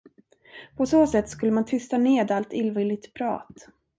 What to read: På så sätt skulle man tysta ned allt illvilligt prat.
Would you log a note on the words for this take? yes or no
no